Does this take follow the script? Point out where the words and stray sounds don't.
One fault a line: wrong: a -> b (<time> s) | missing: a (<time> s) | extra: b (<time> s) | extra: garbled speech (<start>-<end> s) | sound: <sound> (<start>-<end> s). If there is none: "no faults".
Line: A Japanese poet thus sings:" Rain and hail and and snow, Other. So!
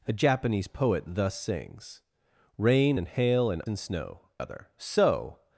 no faults